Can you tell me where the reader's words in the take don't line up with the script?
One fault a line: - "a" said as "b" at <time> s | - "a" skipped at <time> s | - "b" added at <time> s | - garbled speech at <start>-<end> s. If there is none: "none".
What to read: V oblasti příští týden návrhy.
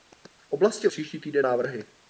none